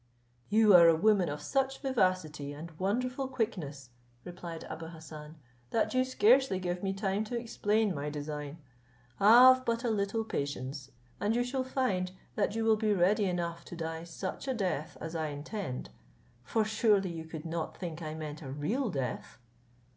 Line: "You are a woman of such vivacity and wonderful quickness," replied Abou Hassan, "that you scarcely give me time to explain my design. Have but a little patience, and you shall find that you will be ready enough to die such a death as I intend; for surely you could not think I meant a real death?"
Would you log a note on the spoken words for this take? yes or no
no